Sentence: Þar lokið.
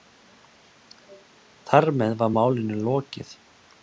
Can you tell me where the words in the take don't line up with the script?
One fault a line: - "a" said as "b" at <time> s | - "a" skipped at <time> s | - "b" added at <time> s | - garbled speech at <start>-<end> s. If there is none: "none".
- "með var málinu" added at 2.0 s